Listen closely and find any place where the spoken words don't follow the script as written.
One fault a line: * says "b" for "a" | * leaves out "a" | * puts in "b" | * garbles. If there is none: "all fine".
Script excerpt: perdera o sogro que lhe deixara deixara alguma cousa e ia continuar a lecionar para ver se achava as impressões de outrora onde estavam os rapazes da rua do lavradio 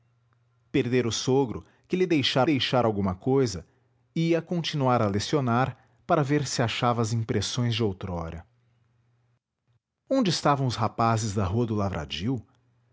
all fine